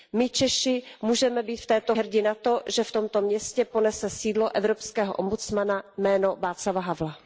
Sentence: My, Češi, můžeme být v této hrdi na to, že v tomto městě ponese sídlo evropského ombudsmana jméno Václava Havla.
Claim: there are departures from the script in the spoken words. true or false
false